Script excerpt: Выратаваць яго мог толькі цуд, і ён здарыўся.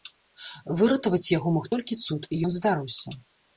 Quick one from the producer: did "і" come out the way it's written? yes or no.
yes